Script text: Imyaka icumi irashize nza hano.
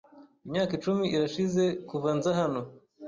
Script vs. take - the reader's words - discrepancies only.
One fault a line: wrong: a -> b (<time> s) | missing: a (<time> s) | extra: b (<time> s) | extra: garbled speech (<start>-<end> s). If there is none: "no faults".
extra: kuva (1.9 s)